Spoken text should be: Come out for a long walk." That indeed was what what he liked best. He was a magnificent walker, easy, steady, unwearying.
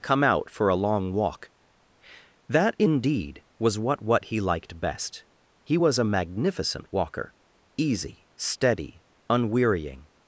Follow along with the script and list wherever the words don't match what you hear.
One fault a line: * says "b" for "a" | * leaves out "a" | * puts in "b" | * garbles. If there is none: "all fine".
all fine